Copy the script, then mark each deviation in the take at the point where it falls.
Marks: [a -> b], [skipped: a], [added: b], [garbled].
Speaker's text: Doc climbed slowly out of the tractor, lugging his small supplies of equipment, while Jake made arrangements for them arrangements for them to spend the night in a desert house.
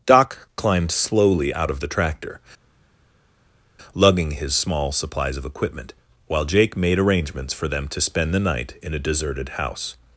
Doc climbed slowly out of the tractor, lugging his small supplies of equipment, while Jake made arrangements for them [skipped: arrangements for them] to spend the night in a [desert -> deserted] house.